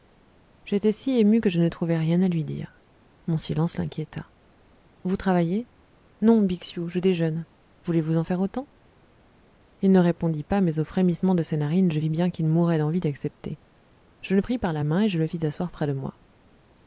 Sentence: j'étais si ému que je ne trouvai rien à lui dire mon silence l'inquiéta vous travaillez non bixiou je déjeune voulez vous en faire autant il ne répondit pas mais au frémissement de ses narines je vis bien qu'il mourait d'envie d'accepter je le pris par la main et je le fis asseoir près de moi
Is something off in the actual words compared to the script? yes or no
no